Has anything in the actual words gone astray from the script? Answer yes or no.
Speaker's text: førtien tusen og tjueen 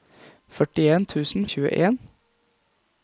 no